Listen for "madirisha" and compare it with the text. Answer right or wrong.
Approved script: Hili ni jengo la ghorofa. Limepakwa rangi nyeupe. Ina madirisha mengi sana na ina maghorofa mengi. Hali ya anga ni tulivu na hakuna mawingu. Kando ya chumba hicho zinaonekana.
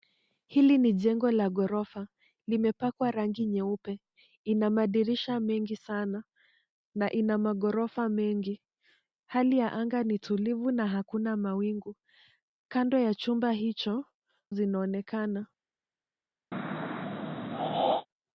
right